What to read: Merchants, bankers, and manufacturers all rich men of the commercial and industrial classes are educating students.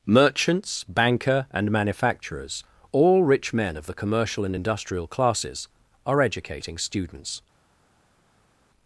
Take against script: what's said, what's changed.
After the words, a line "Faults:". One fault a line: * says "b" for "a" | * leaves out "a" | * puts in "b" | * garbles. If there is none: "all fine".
Merchants, banker, and manufacturers all rich men of the commercial and industrial classes are educating students.
Faults:
* says "banker" for "bankers"